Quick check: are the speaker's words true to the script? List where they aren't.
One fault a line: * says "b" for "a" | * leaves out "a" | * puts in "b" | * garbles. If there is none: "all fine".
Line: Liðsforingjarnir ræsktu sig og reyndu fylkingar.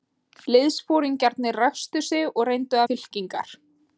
all fine